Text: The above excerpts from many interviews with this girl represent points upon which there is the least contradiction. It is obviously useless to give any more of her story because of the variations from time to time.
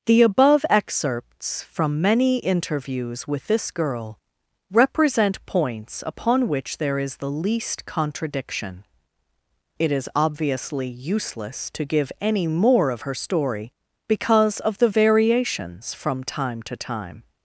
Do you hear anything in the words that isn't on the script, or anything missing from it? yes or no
no